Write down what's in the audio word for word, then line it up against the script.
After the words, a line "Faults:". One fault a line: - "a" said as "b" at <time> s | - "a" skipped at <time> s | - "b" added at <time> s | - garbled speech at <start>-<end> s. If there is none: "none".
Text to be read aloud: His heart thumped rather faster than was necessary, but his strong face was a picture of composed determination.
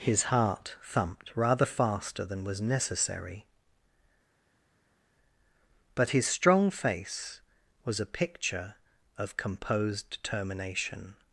His heart thumped rather faster than was necessary, but his strong face was a picture of composed determination.
Faults:
none